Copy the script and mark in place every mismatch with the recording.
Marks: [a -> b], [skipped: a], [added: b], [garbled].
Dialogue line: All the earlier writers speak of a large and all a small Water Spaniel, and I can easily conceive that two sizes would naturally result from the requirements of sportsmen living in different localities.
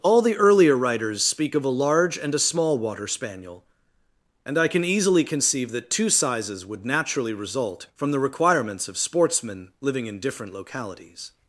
All the earlier writers speak of a large and [skipped: all] a small Water Spaniel, and I can easily conceive that two sizes would naturally result from the requirements of sportsmen living in different localities.